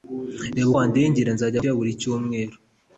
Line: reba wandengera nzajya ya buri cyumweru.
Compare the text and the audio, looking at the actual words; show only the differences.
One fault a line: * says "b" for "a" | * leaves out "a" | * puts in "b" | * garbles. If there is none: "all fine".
all fine